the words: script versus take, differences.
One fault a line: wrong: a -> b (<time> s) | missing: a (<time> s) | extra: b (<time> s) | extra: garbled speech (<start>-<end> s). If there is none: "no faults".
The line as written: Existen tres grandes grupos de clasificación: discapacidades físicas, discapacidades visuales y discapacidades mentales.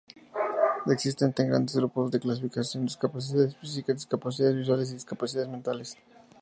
no faults